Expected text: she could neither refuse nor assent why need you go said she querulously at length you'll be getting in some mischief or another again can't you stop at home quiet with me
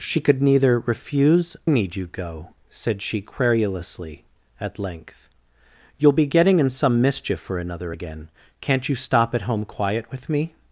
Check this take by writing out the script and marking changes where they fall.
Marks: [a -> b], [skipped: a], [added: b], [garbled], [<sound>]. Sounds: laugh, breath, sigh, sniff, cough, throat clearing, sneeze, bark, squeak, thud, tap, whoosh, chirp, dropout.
she could neither refuse [skipped: nor assent why] need you go said she querulously at length you'll be getting in some mischief or another again can't you stop at home quiet with me